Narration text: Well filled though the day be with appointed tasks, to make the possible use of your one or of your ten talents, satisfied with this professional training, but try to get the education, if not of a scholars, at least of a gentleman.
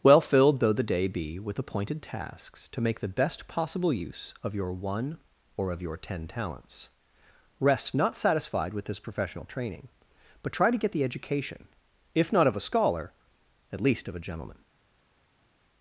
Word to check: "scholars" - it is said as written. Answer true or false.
false